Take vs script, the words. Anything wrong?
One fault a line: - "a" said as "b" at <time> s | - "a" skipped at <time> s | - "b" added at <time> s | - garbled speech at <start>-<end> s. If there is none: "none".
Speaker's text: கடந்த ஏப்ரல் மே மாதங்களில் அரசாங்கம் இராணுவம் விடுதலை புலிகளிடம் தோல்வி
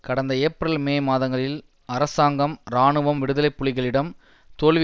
none